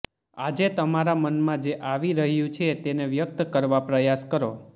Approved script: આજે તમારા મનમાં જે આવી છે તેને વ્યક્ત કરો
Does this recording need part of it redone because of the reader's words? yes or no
yes